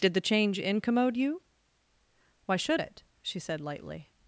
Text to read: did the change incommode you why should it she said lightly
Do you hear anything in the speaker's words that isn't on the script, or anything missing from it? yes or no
no